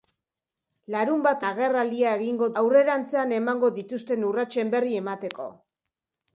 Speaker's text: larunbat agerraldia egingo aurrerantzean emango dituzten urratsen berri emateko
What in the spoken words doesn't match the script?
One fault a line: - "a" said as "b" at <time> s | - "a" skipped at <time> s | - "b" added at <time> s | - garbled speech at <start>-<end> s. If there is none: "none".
none